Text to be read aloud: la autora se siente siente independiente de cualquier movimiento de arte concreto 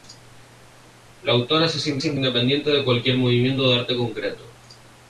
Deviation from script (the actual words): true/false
false